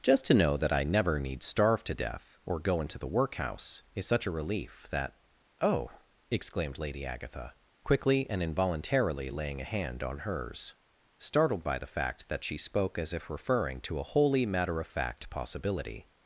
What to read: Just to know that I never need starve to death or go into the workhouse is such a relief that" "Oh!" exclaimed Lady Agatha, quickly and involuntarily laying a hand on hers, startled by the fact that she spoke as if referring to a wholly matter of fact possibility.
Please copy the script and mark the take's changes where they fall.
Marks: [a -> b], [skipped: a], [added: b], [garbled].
Just to know that I never need starve to death or go into the workhouse is such a relief that" "Oh!" exclaimed Lady Agatha, quickly and involuntarily laying a hand on hers, startled by the fact that she spoke as if referring to a wholly matter of fact possibility.